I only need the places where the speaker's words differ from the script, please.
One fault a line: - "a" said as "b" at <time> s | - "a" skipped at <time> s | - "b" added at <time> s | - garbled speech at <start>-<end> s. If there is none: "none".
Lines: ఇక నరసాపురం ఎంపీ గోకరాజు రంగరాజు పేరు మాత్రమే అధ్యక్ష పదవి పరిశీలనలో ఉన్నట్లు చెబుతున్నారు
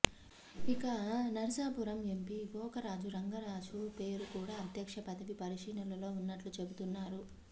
- "మాత్రమే" said as "కూడా" at 4.3 s